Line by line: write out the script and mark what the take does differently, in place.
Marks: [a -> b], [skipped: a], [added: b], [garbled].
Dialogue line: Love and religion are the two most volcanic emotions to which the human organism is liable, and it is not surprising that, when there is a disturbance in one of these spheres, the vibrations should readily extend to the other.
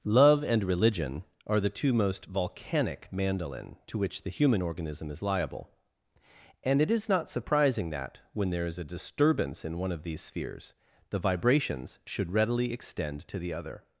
Love and religion are the two most volcanic [emotions -> mandolin] to which the human organism is liable, and it is not surprising that, when there is a disturbance in one of these spheres, the vibrations should readily extend to the other.